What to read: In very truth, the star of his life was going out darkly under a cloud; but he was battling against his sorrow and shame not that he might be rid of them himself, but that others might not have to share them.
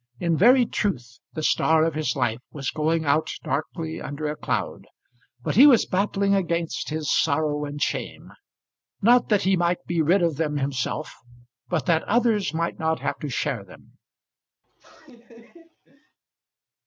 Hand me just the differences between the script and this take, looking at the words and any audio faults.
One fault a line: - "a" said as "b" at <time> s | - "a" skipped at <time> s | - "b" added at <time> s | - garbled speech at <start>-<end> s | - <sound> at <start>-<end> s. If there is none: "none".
- laugh at 14.6-16.2 s